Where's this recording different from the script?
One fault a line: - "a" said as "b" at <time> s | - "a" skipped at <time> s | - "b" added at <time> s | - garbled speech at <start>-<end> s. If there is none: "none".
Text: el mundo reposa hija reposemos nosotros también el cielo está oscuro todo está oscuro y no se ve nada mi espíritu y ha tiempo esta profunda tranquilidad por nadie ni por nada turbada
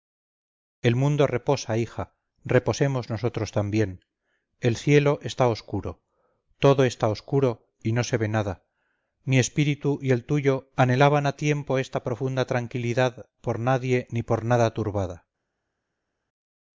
- "el tuyo anhelaban" added at 10.1 s